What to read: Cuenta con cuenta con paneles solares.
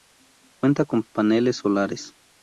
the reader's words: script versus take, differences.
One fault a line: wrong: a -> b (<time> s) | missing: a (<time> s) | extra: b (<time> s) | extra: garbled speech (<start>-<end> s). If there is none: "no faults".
missing: cuenta con (1.0 s)